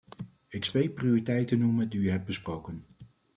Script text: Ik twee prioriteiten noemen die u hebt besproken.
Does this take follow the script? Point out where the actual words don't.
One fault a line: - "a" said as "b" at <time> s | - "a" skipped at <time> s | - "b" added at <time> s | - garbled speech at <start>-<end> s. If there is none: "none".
none